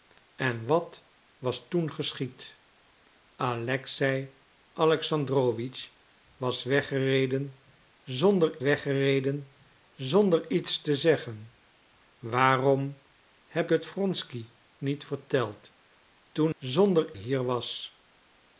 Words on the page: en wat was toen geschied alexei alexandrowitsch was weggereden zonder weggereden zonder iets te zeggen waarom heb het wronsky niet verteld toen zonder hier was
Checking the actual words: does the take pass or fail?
pass